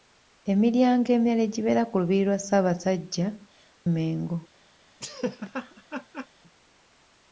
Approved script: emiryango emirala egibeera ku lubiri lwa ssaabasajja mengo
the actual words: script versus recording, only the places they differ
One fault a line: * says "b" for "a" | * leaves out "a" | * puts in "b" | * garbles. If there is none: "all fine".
all fine